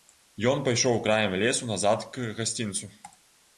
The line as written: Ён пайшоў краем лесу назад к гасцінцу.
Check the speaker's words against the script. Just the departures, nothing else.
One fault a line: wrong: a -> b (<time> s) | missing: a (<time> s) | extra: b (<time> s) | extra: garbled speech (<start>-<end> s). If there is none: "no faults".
no faults